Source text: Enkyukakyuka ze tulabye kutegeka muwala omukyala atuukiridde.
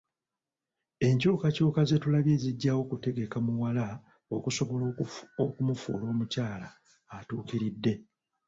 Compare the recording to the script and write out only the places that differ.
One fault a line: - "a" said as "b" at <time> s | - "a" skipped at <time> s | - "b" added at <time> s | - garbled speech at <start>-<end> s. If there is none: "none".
- "zijjawo" added at 2.4 s
- "okusobola okumufuula" added at 4.3 s